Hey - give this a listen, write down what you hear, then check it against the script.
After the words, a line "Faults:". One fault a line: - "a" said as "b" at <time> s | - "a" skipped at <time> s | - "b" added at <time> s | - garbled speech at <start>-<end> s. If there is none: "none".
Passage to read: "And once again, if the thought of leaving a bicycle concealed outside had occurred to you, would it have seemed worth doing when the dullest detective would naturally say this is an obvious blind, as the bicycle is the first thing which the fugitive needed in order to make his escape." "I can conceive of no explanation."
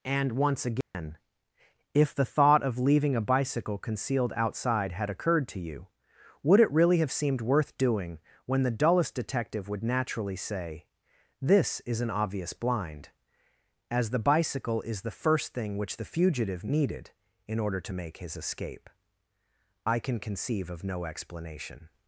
"And once again, if the thought of leaving a bicycle concealed outside had occurred to you, would it really have seemed worth doing when the dullest detective would naturally say this is an obvious blind, as the bicycle is the first thing which the fugitive needed in order to make his escape." "I can conceive of no explanation."
Faults:
- "really" added at 6.7 s